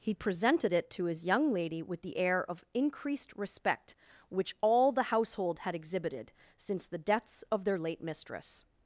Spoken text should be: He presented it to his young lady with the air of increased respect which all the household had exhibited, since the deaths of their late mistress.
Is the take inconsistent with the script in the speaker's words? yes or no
no